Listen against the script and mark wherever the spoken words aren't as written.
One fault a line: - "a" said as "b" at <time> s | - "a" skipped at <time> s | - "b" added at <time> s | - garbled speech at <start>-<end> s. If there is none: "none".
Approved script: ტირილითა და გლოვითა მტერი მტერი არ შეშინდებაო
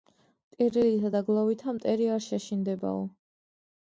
- "მტერი" skipped at 2.1 s